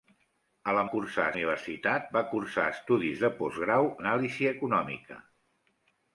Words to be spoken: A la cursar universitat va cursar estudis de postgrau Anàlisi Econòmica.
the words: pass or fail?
pass